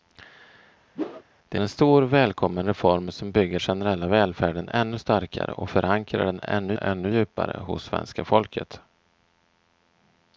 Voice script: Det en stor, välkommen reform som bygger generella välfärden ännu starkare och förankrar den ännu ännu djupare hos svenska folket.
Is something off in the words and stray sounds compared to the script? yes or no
yes